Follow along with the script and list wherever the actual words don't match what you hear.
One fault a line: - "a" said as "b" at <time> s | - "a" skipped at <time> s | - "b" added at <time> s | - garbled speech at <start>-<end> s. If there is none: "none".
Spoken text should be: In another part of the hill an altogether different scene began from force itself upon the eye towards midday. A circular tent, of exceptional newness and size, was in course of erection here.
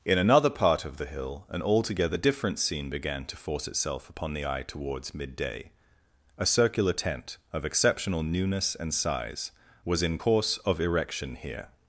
- "from" said as "to" at 3.2 s